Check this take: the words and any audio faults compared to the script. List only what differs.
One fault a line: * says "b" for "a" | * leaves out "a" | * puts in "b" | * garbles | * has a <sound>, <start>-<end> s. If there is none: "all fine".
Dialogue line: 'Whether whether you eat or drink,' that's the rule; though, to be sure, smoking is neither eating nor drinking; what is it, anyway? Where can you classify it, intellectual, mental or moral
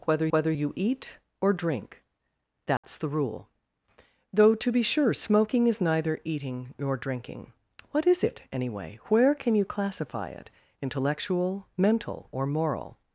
* has a dropout, 2.8-2.8 s